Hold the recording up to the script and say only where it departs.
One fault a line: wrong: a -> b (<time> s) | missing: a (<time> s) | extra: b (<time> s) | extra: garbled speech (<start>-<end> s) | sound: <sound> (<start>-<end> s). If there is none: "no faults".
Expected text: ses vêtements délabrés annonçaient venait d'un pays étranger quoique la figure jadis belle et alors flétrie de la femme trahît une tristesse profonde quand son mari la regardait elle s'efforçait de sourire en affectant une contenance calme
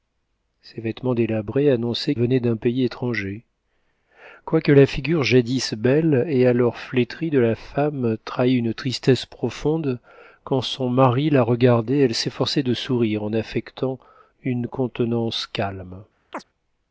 sound: chirp (16.3-16.4 s)